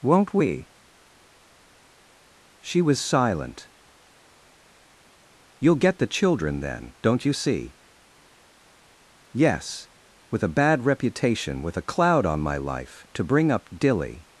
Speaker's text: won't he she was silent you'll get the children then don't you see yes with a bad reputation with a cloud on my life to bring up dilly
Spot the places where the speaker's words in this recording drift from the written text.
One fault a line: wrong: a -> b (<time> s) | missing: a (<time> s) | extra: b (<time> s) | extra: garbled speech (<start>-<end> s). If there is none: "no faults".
wrong: he -> we (0.3 s)